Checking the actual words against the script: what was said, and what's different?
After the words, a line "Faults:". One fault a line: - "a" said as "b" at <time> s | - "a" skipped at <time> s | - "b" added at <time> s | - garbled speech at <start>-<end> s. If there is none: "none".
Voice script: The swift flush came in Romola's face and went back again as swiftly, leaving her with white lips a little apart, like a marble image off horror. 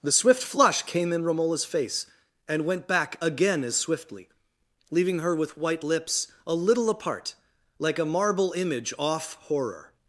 The swift flush came in Romola's face and went back again as swiftly, leaving her with white lips a little apart, like a marble image off horror.
Faults:
none